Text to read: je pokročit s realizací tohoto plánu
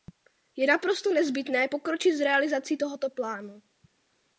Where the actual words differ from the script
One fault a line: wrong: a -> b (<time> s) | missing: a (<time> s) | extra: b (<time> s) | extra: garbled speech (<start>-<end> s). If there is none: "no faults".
extra: naprosto nezbytné (0.7 s)